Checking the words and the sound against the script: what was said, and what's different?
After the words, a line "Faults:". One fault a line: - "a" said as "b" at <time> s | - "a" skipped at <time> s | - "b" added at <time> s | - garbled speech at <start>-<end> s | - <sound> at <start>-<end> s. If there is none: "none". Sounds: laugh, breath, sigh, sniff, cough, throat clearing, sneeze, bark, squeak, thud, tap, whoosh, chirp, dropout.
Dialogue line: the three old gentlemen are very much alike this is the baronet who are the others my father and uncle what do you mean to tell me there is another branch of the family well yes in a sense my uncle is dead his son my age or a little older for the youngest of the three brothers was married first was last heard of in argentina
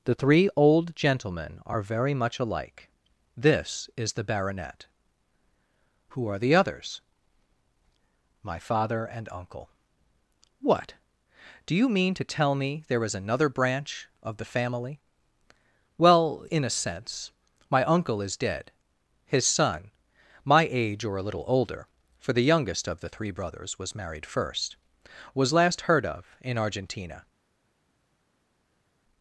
the three old gentlemen are very much alike this is the baronet who are the others my father and uncle what do you mean to tell me there is another branch of the family well in a sense my uncle is dead his son my age or a little older for the youngest of the three brothers was married first was last heard of in argentina
Faults:
- "yes" skipped at 16.5 s